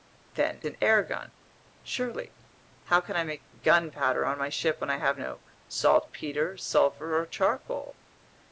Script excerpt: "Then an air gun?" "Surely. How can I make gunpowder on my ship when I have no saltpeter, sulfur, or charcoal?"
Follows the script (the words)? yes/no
yes